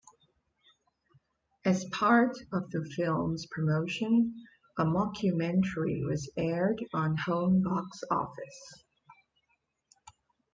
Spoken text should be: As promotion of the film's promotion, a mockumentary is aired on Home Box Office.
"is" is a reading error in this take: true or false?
true